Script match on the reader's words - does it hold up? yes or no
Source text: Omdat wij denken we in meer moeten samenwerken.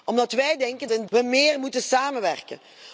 yes